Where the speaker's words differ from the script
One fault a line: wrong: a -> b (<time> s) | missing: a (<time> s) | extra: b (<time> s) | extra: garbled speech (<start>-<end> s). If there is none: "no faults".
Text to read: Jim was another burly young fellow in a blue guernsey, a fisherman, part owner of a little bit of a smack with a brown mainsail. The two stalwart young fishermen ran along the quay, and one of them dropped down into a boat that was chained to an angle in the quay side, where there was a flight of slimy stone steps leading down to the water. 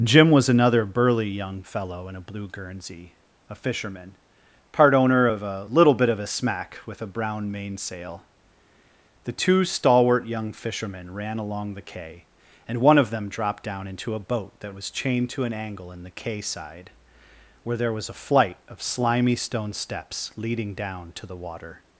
no faults